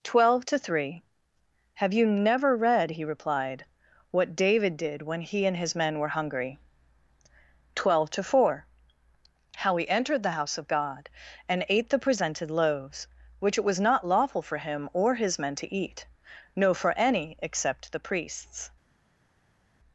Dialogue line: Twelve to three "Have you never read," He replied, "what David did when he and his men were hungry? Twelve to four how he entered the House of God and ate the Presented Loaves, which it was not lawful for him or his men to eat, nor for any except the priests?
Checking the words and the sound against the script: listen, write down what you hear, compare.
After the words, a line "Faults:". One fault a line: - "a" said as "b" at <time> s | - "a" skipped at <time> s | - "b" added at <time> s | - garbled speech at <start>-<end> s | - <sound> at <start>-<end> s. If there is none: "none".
Twelve to three "Have you never read," He replied, "what David did when he and his men were hungry? Twelve to four how he entered the House of God and ate the Presented Loaves, which it was not lawful for him or his men to eat, no for any except the priests?
Faults:
- "nor" said as "no" at 16.5 s